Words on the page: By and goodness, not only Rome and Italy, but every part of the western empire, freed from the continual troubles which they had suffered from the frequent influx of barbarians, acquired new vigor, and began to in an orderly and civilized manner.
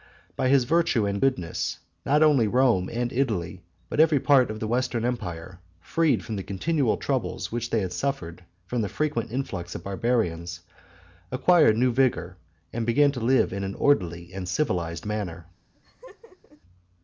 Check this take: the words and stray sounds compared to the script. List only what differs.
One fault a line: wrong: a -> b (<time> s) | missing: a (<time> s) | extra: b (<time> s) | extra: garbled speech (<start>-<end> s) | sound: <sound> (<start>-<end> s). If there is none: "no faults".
extra: his virtue (0.5 s)
extra: live (13.2 s)
sound: laugh (15.7-16.6 s)